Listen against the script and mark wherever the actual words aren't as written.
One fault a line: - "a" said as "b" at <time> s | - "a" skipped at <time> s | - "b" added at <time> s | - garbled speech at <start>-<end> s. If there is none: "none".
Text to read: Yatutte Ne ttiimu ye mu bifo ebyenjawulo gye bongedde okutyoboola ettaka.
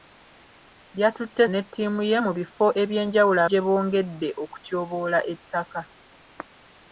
none